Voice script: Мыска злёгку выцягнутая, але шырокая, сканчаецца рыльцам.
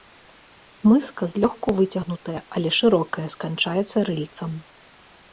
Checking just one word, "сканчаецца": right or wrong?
right